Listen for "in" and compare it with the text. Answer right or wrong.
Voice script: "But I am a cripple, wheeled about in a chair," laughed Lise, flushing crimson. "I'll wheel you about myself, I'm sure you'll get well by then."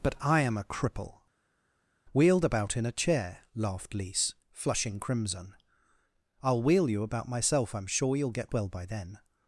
right